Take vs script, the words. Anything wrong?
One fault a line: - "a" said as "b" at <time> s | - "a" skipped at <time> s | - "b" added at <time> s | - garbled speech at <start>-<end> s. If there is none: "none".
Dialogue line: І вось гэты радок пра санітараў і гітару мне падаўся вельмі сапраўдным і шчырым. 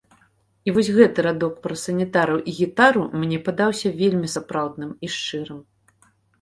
none